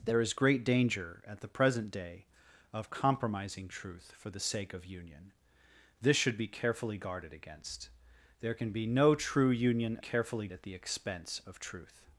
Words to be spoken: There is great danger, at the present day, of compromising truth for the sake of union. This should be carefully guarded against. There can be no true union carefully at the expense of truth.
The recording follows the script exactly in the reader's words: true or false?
true